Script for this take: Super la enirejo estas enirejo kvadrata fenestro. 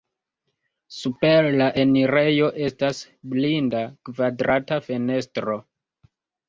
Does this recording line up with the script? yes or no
no